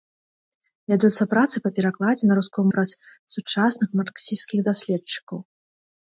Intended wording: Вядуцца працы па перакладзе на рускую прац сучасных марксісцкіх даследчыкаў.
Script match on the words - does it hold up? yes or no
yes